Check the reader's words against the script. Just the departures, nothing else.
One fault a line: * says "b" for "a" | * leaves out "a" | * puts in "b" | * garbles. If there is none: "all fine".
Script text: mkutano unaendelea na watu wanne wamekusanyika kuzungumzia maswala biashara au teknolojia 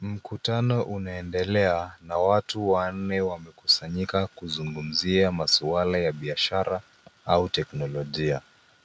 * puts in "ya"